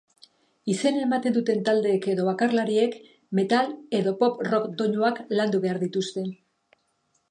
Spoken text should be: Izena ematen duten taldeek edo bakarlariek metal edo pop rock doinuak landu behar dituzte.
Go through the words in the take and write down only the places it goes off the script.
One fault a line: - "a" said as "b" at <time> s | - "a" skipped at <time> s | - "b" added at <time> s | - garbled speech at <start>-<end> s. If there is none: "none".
none